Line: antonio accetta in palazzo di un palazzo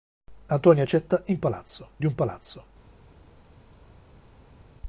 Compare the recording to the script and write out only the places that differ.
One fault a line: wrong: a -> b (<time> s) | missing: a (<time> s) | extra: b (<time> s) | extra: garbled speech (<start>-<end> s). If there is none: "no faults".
no faults